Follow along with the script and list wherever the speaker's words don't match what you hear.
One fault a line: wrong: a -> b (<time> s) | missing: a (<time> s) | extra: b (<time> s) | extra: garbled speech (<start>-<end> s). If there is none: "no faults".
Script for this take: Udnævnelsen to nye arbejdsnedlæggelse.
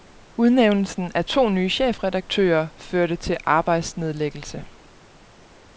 extra: af (1.1 s)
extra: chefredaktører førte til (1.7 s)